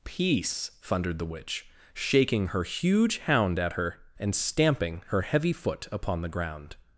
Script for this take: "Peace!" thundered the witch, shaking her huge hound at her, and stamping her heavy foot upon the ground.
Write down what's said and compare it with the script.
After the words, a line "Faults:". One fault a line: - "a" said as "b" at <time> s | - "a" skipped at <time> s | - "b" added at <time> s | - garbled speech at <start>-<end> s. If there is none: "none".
"Peace!" thundered the witch, shaking her huge hound at her, and stamping her heavy foot upon the ground.
Faults:
none